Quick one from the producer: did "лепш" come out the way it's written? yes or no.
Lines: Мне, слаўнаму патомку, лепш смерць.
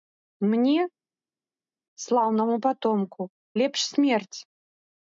yes